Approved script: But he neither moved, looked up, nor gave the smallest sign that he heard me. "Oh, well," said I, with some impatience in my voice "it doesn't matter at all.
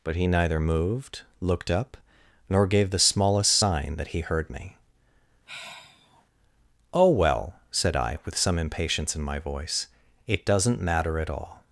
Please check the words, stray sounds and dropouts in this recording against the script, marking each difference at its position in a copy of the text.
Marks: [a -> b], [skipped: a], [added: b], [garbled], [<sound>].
But he neither moved, looked up, nor gave the smallest sign that he heard me. [sigh] "Oh, well," said I, with some impatience in my voice "it doesn't matter at all.